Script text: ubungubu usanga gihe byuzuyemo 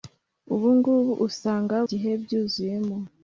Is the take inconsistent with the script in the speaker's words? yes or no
no